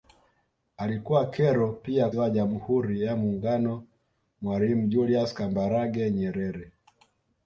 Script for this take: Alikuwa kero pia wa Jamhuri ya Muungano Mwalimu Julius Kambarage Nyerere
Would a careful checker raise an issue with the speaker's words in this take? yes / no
no